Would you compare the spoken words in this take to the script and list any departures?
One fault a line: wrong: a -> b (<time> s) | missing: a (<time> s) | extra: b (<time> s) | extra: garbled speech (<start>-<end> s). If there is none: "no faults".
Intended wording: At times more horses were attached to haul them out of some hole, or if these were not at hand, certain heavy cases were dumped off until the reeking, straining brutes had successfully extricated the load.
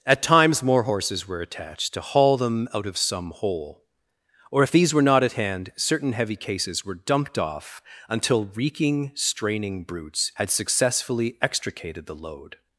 missing: the (8.5 s)